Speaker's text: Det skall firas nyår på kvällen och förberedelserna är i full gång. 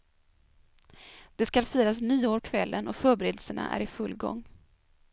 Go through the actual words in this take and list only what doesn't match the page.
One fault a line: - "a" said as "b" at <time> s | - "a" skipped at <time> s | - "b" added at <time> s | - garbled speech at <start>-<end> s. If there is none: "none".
- "på" skipped at 2.4 s